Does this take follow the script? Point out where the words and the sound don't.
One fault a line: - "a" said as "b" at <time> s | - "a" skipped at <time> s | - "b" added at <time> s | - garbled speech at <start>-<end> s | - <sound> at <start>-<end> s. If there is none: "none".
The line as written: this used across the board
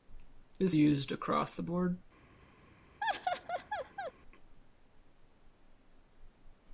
- laugh at 3.0-4.1 s